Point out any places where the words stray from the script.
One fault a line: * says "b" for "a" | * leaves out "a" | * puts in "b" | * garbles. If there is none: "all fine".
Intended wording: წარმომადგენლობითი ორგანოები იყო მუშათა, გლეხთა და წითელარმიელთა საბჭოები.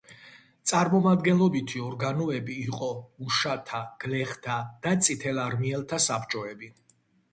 all fine